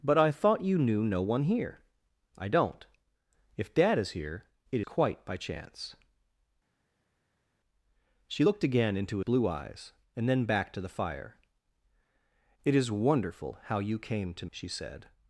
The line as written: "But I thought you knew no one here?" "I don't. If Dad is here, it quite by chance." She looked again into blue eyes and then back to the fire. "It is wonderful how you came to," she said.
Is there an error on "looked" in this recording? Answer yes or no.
no